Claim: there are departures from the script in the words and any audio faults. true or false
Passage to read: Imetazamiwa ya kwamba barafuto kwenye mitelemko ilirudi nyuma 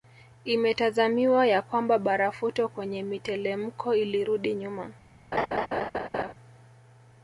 true